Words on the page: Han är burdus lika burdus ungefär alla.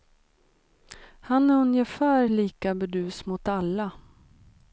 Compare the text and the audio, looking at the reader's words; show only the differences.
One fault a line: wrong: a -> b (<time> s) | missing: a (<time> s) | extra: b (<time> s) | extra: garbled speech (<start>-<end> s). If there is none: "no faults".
wrong: burdus -> ungefär (1.6 s)
wrong: ungefär -> mot (3.3 s)